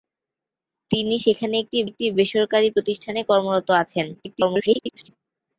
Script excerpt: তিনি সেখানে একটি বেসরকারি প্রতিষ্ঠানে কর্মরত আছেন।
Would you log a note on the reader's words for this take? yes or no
yes